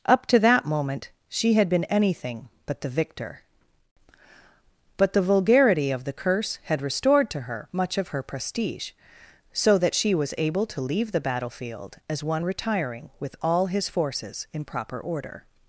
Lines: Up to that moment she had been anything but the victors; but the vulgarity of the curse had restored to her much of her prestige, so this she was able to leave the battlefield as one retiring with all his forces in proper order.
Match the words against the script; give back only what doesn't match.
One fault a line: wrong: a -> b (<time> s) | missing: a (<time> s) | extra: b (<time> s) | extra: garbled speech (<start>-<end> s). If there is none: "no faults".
wrong: victors -> victor (2.9 s)
wrong: this -> that (9.8 s)